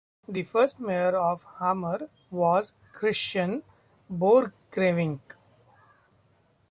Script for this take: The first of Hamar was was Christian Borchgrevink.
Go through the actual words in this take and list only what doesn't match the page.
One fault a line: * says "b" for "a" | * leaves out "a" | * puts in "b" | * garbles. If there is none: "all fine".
* puts in "mayor"
* leaves out "was"